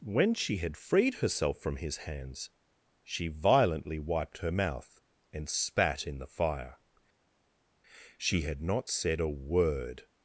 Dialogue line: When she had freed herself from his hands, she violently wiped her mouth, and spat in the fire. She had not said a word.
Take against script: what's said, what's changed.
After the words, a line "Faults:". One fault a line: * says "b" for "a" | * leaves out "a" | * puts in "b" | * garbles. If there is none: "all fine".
When she had freed herself from his hands, she violently wiped her mouth, and spat in the fire. She had not said a word.
Faults:
all fine